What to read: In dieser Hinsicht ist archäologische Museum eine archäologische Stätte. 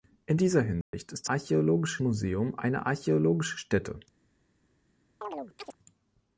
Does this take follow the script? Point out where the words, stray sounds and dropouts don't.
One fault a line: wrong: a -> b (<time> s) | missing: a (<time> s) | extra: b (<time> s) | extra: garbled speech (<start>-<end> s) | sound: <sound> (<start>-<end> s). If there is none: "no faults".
sound: dropout (0.8-0.9 s)
sound: chirp (5.2-5.7 s)